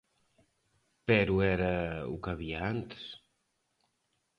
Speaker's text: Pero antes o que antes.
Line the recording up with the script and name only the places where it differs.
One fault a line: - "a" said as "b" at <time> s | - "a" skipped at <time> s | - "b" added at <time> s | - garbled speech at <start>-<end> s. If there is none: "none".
- "antes" said as "era" at 1.4 s
- "había" added at 2.3 s